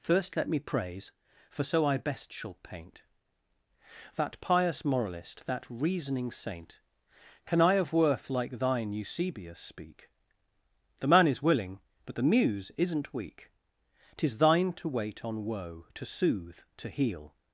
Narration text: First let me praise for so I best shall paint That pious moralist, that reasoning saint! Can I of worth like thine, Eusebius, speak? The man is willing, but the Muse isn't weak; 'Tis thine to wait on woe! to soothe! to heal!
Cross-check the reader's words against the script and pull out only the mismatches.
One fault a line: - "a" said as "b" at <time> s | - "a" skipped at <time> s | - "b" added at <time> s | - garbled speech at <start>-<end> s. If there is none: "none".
none